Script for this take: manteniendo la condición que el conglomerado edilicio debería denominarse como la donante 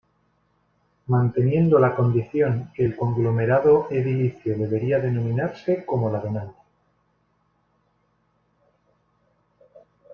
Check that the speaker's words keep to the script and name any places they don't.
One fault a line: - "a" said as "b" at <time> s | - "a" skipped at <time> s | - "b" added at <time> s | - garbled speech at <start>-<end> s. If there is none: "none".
none